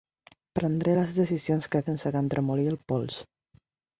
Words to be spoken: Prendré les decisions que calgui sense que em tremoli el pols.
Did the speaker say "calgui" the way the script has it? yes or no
no